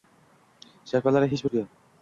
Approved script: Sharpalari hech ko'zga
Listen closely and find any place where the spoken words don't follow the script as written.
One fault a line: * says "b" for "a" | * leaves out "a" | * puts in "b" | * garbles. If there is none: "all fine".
all fine